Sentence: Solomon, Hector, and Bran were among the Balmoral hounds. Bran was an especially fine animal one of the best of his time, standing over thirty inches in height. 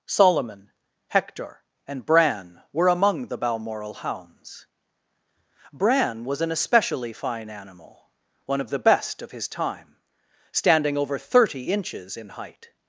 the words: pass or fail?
pass